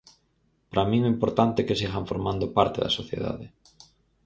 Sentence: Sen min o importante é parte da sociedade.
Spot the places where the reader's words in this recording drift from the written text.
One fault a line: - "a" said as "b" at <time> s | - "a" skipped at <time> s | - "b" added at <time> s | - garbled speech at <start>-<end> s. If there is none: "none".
- "Sen" said as "Para" at 0.7 s
- "que sigan formando" added at 1.7 s